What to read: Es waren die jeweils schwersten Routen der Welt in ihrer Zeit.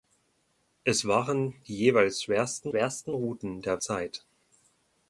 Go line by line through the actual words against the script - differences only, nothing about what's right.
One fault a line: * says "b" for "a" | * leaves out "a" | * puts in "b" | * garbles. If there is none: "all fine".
* puts in "schwersten"
* leaves out "Welt in ihrer"